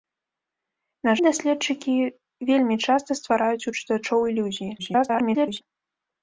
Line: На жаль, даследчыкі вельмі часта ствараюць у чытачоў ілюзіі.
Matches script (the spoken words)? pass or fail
fail